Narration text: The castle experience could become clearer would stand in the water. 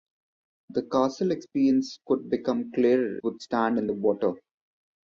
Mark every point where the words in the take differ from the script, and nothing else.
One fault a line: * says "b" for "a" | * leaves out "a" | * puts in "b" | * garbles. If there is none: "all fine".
all fine